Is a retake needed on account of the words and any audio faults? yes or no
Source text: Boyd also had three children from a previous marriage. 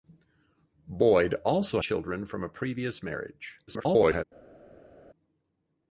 yes